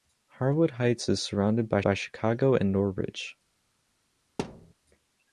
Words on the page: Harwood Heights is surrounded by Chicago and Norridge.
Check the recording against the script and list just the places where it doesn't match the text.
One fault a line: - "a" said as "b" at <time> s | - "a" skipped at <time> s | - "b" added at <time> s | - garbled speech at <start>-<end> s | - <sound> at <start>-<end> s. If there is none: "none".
- "by" added at 1.8 s
- thud at 4.4-4.7 s